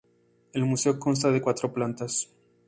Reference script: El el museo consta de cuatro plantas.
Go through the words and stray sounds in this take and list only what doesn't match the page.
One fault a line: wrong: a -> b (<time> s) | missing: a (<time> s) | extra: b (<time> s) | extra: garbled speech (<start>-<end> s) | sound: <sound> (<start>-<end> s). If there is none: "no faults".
missing: el (0.7 s)